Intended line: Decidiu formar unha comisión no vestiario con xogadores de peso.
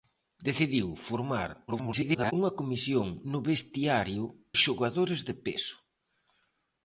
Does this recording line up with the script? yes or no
no